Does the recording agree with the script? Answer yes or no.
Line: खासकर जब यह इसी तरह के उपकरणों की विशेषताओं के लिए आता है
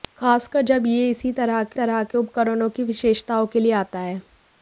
no